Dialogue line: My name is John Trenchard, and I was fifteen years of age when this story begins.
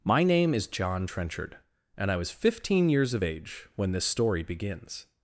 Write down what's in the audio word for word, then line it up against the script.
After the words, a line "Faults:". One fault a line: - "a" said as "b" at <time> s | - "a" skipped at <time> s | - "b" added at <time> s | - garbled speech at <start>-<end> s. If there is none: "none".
My name is John Trenchard, and I was fifteen years of age when this story begins.
Faults:
none